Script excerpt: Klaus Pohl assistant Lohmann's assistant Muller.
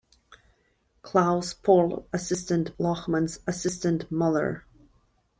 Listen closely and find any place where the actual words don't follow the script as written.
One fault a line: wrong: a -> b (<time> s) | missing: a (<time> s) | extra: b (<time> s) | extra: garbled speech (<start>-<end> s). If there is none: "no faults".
no faults